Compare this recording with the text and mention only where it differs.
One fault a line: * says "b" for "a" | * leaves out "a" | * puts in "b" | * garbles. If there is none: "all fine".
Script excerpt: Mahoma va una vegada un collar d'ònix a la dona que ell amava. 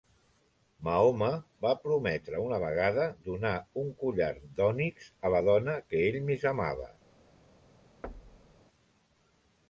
* puts in "prometre"
* puts in "donar"
* puts in "més"